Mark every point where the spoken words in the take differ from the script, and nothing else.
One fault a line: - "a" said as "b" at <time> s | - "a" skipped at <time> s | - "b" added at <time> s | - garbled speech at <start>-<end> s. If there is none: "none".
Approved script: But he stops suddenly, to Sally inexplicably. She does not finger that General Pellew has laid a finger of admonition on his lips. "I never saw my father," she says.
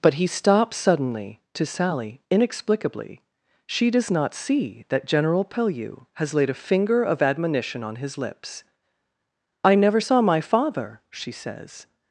- "finger" said as "see" at 4.3 s